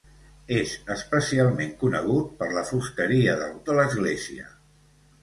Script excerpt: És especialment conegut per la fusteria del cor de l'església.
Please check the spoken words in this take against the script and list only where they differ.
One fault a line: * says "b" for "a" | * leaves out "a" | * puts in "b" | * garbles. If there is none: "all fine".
* leaves out "cor"